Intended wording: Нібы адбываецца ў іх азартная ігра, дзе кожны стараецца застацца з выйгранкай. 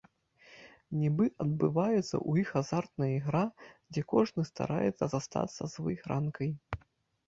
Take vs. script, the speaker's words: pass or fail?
pass